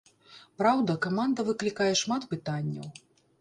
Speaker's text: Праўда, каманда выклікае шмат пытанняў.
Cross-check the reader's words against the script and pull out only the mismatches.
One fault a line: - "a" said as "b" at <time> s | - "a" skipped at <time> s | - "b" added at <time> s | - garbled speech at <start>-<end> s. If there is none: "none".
none